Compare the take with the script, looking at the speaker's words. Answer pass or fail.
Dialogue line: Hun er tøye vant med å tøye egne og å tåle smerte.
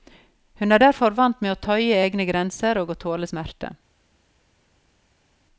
fail